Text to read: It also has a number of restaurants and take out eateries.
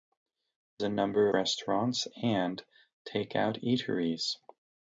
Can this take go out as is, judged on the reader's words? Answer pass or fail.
fail